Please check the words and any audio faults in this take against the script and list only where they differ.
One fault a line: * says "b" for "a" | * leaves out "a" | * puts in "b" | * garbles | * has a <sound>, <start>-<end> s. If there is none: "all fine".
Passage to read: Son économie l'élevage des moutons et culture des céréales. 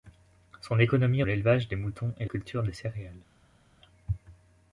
all fine